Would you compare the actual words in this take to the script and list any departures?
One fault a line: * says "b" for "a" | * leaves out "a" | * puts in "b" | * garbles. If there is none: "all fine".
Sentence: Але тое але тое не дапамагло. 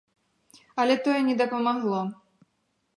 * leaves out "але тое"